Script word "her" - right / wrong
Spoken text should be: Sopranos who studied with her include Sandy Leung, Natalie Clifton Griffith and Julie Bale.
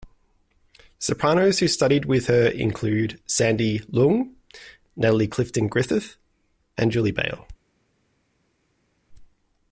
right